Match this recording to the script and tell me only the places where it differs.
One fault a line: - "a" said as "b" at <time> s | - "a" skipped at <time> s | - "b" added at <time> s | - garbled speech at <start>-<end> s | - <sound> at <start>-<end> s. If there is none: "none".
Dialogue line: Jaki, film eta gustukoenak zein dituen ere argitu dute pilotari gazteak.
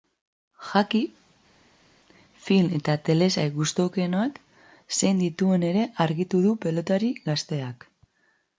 - "telesail" added at 3.1 s
- "dute" said as "du" at 6.5 s